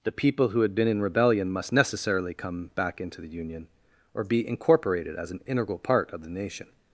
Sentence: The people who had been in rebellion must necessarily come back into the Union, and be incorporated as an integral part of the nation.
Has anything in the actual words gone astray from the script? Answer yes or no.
yes